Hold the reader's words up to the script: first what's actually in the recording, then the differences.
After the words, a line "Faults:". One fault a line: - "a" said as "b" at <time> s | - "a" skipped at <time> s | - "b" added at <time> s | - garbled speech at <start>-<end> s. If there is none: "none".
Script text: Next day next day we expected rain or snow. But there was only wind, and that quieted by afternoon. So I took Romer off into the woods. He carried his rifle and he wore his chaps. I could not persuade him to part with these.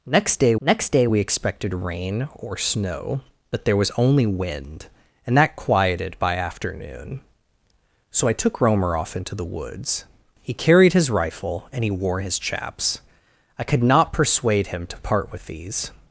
Next day next day we expected rain or snow. But there was only wind, and that quieted by afternoon. So I took Romer off into the woods. He carried his rifle and he wore his chaps. I could not persuade him to part with these.
Faults:
none